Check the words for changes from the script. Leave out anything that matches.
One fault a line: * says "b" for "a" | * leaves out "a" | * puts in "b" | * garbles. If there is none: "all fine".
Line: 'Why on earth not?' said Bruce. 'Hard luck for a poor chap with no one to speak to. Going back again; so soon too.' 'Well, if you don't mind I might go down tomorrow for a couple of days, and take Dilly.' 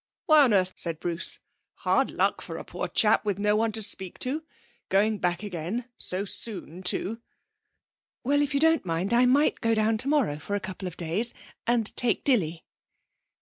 * leaves out "not"